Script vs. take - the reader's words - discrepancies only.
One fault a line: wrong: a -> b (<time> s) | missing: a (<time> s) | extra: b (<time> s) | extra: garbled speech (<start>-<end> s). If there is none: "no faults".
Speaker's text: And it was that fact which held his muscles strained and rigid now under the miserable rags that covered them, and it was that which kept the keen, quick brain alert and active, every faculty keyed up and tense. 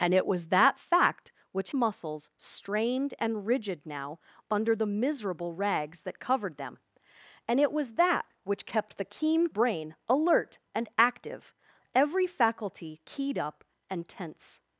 missing: held his (1.7 s)
missing: quick (9.5 s)